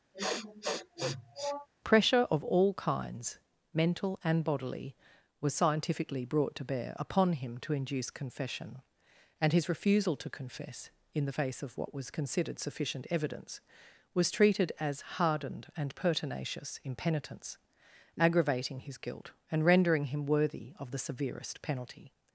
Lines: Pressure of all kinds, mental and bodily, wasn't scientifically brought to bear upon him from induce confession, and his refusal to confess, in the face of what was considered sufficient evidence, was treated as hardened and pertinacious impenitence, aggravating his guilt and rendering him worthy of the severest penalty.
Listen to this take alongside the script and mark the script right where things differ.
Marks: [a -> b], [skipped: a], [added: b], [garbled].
Pressure of all kinds, mental and bodily, [wasn't -> was] scientifically brought to bear upon him [from -> to] induce confession, and his refusal to confess, in the face of what was considered sufficient evidence, was treated as hardened and pertinacious impenitence, aggravating his guilt and rendering him worthy of the severest penalty.